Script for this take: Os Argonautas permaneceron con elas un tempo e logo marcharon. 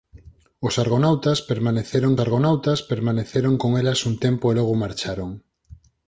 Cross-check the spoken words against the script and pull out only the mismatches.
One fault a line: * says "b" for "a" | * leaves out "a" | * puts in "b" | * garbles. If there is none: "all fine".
* puts in "Argonautas permaneceron"